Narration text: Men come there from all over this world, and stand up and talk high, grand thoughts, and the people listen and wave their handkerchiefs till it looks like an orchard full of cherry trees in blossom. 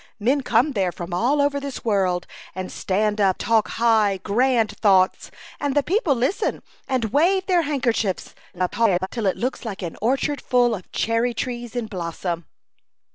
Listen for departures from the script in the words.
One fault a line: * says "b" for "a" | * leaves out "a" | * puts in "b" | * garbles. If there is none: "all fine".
* leaves out "and"
* garbles